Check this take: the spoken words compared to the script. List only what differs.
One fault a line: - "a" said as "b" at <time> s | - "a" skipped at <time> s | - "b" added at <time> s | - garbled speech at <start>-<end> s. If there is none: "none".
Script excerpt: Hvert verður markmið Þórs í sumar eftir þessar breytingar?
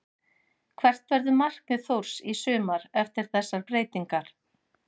none